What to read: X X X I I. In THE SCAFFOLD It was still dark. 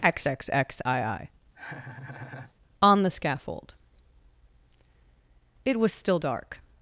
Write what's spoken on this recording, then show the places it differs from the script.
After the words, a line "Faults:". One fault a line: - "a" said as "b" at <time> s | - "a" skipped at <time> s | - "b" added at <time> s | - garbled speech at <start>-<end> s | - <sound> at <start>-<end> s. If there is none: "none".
X X X I I. ON THE SCAFFOLD It was still dark.
Faults:
- laugh at 1.5-2.5 s
- "In" said as "ON" at 2.8 s